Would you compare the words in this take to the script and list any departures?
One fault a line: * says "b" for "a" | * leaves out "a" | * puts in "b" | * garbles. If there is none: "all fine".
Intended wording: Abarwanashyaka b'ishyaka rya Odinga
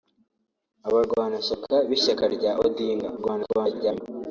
* garbles